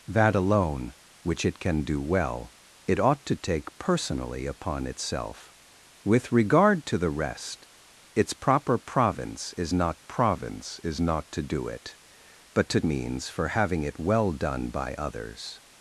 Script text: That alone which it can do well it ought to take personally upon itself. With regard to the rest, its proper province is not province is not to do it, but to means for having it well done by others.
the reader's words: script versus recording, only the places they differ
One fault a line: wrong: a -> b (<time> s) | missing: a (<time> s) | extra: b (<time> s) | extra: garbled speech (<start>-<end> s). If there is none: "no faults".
no faults